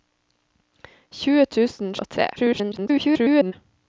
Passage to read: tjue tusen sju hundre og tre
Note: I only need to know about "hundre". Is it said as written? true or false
false